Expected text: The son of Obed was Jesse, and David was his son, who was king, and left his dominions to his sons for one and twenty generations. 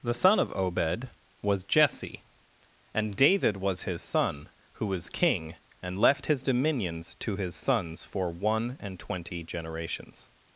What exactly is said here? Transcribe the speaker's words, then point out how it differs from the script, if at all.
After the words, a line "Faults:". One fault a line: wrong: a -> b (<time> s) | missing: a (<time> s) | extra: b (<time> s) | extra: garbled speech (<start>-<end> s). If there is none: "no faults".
The son of Obed was Jesse, and David was his son, who was king, and left his dominions to his sons for one and twenty generations.
Faults:
no faults